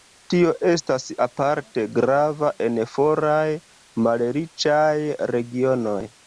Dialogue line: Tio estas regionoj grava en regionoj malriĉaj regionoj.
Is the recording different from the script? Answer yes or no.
yes